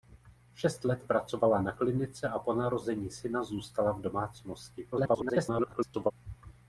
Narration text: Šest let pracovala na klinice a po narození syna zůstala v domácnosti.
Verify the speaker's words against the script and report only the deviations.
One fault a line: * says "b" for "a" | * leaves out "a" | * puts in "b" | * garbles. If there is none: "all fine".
* garbles